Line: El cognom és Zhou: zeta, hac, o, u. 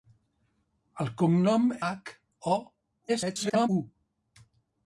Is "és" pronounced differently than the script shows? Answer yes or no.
yes